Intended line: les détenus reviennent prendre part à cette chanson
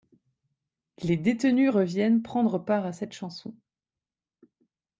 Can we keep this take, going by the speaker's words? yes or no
yes